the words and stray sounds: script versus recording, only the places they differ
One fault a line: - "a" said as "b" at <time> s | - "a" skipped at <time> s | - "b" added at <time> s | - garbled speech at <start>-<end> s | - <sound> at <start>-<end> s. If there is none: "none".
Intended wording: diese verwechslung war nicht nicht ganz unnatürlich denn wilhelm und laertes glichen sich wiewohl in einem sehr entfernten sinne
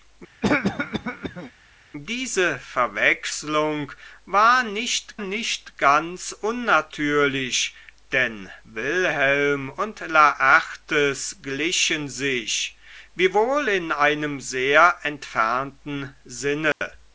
- cough at 0.4-1.5 s
- dropout at 16.7-16.8 s